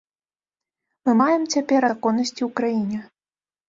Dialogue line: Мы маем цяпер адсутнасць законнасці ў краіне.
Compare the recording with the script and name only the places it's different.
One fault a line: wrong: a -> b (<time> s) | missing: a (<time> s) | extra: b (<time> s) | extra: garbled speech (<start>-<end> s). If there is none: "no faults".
missing: адсутнасць (1.8 s)